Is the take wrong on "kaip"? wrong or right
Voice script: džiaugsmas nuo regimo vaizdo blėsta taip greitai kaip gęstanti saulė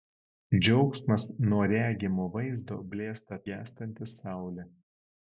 wrong